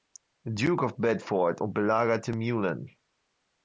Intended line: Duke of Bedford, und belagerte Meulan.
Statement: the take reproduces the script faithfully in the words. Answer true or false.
true